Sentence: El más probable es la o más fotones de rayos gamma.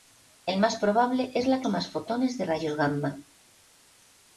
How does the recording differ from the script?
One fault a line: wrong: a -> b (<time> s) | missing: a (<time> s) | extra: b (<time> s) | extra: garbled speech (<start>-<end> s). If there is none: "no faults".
no faults